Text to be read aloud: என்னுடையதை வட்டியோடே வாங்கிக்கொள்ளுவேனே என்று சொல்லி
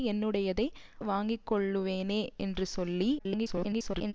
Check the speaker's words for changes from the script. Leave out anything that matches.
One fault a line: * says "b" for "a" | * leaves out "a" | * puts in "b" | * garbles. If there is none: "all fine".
* leaves out "வட்டியோடே"
* garbles